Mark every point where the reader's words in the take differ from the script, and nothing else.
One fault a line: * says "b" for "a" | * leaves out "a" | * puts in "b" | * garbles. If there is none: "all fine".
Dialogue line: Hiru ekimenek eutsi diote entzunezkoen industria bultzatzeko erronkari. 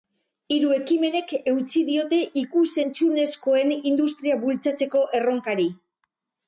* puts in "ikus"